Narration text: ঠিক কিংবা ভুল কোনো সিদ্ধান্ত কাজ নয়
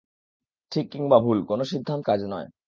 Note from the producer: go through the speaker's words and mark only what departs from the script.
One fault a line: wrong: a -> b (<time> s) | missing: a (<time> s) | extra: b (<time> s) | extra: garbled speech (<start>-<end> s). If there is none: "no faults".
no faults